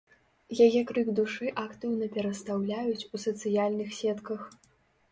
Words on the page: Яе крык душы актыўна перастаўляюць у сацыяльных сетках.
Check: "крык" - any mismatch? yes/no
no